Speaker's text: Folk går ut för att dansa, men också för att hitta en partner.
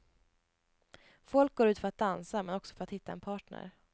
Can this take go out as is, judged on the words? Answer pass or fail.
pass